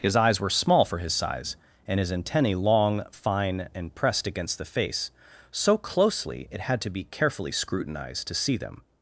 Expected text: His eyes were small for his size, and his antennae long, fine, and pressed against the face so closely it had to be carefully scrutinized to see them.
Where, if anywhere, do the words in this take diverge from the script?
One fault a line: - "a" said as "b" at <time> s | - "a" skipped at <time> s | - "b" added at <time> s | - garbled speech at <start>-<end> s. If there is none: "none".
none